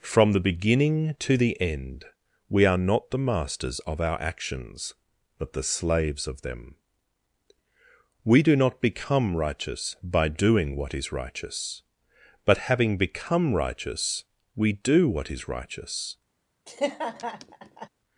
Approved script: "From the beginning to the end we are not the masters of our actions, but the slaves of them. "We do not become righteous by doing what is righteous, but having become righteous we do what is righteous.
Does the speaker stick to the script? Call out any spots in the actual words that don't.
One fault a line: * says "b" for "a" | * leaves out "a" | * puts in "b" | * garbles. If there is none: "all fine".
all fine